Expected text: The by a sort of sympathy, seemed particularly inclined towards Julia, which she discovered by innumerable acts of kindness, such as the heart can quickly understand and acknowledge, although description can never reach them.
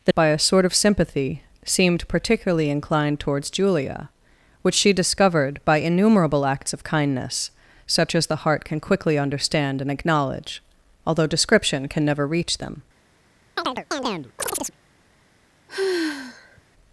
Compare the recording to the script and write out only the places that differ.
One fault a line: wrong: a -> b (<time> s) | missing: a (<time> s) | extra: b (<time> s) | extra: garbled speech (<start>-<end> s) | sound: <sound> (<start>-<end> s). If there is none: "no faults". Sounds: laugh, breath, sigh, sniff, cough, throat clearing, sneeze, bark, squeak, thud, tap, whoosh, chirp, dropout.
sound: chirp (13.6-14.8 s)
sound: sigh (15.7-16.6 s)